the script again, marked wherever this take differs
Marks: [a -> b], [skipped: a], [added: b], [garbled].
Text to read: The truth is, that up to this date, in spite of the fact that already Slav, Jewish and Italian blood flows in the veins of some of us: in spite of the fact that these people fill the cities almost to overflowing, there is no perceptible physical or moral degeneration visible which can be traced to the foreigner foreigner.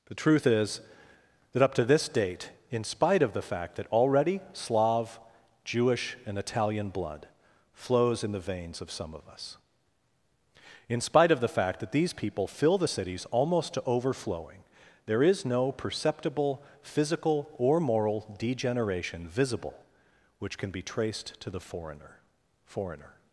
The truth is, that up to this date, in spite of the fact that already Slav, Jewish and Italian blood flows in the veins of some of us: in spite of the fact that these people fill the cities almost to overflowing, there is no perceptible physical or moral degeneration visible which can be traced to the foreigner foreigner.